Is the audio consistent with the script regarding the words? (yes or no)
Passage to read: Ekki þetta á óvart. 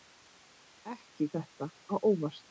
yes